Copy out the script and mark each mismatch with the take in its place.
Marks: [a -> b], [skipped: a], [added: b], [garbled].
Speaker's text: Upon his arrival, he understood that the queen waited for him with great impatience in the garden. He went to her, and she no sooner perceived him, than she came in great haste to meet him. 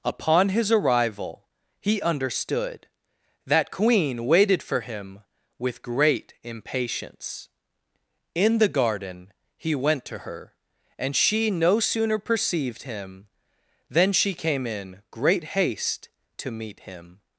Upon his arrival, he understood that [skipped: the] queen waited for him with great impatience in the garden. He went to her, and she no sooner perceived him, than she came in great haste to meet him.